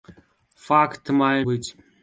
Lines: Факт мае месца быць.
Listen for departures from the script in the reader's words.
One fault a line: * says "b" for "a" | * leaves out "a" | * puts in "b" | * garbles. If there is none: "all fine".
* leaves out "месца"